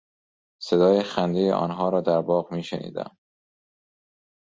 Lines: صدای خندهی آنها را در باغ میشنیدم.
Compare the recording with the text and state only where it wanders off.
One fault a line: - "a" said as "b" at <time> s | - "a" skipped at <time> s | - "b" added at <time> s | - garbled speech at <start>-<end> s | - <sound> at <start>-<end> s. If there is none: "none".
none